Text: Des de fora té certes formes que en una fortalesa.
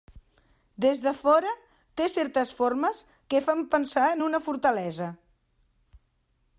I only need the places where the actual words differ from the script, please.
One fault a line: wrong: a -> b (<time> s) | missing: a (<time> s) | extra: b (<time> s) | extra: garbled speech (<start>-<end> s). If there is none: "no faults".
extra: fan pensar (3.5 s)